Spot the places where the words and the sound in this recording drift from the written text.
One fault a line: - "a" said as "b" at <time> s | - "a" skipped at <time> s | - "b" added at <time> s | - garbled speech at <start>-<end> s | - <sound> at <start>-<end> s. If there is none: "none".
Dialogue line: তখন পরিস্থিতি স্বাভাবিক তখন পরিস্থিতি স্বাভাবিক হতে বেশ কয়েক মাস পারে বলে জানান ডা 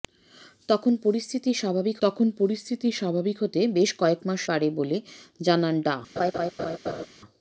- laugh at 6.2-7.1 s